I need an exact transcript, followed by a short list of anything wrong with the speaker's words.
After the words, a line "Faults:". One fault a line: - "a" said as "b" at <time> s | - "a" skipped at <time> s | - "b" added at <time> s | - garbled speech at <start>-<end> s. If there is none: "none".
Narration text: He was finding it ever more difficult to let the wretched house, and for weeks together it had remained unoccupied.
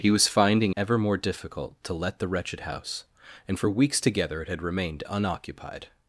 He was finding ever more difficult to let the wretched house, and for weeks together it had remained unoccupied.
Faults:
- "it" skipped at 0.7 s